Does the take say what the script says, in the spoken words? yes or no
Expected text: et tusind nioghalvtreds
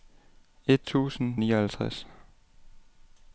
yes